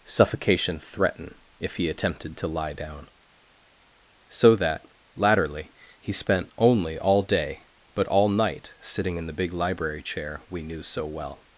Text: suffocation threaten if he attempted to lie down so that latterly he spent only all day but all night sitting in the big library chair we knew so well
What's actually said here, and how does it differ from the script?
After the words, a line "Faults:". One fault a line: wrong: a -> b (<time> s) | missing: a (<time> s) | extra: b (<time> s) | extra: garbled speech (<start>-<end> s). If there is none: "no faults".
suffocation threaten if he attempted to lie down so that latterly he spent only all day but all night sitting in the big library chair we knew so well
Faults:
no faults